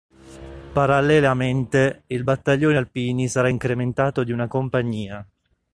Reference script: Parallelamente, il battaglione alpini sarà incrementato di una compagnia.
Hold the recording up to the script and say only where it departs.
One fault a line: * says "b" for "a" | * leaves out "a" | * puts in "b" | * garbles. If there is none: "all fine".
all fine